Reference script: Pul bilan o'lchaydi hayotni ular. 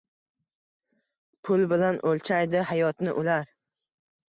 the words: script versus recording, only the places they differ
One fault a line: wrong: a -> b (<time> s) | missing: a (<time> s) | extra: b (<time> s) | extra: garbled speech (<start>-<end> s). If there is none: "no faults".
no faults